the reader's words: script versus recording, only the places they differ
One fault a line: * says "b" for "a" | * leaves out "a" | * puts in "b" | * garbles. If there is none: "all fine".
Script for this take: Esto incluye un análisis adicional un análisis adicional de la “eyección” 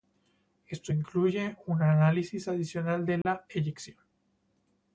* leaves out "un análisis adicional"